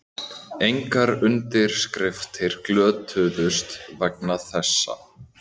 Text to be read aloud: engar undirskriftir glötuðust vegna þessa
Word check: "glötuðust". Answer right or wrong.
right